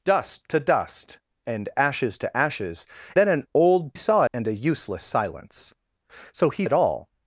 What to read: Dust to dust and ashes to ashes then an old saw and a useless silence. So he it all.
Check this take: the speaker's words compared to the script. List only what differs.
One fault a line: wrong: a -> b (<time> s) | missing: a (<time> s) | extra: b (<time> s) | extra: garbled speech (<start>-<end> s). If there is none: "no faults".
no faults